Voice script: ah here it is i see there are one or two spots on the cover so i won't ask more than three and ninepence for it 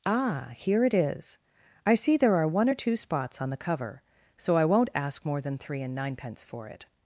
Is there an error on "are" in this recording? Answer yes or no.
no